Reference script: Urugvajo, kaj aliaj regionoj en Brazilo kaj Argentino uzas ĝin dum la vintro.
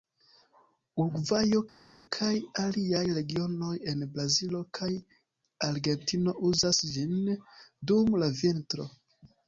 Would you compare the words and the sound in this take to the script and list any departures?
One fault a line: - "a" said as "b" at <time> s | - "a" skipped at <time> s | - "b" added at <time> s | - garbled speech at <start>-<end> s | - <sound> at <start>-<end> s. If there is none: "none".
none